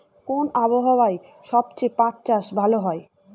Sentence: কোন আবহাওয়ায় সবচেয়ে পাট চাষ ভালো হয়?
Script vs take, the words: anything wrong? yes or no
no